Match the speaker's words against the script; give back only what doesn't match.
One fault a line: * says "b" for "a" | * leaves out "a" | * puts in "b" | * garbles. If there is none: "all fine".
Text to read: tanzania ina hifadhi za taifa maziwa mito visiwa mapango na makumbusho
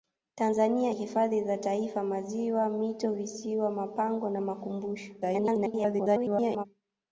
* leaves out "ina"
* garbles